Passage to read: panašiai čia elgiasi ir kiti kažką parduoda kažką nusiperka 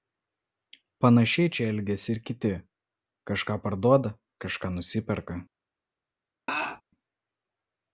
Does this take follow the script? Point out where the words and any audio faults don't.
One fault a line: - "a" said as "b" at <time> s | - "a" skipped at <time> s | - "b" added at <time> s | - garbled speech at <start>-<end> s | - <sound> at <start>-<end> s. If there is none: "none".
- laugh at 6.5-6.8 s